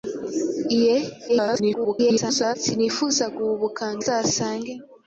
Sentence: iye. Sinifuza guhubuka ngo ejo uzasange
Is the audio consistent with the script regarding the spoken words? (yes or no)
no